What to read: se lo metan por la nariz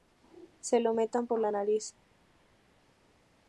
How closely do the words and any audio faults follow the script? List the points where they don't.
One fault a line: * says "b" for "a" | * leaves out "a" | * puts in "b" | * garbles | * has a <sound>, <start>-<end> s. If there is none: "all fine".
all fine